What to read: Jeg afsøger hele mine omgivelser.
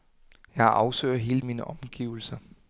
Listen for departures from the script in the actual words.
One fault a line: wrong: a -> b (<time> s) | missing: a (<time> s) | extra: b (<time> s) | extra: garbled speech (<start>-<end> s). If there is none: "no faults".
no faults